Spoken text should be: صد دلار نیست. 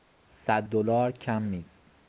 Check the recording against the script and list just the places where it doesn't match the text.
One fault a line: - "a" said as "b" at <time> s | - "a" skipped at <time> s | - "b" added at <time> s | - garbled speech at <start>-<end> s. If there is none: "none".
- "کم" added at 1.1 s